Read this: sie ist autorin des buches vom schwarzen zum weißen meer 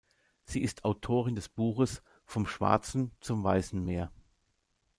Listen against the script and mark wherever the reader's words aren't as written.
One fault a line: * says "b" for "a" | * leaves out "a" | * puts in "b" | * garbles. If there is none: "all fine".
all fine